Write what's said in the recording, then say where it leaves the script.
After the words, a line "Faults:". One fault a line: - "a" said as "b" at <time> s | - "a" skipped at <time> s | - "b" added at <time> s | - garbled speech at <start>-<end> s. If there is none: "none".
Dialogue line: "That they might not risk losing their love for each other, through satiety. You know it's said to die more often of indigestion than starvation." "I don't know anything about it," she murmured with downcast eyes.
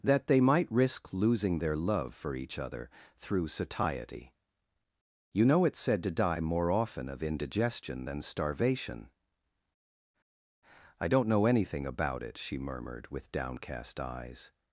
"That they might risk losing their love for each other, through satiety. You know it's said to die more often of indigestion than starvation." "I don't know anything about it," she murmured with downcast eyes.
Faults:
- "not" skipped at 0.7 s